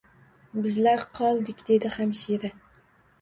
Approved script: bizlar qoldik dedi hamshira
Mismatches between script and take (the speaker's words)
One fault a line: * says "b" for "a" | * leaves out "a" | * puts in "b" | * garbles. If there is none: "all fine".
all fine